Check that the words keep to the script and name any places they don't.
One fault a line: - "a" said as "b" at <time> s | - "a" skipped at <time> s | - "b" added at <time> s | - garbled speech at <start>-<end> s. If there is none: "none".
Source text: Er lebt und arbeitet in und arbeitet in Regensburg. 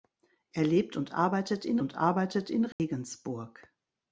none